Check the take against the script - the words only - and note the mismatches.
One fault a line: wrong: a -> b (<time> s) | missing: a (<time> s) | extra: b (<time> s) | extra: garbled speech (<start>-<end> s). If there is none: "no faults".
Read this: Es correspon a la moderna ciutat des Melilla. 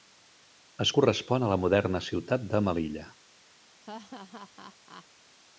wrong: des -> de (2.5 s)